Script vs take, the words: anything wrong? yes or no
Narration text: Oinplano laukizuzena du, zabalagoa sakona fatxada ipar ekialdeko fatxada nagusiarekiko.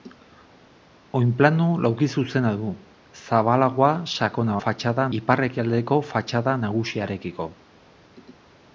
no